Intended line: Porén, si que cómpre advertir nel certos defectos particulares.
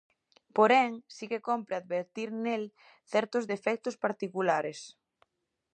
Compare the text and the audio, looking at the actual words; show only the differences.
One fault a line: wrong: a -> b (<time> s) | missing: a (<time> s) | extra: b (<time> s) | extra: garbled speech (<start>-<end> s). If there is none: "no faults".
no faults